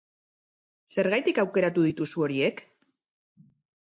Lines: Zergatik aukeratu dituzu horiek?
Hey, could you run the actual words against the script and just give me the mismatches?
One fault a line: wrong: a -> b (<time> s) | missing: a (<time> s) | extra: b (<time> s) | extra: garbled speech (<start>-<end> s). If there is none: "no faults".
no faults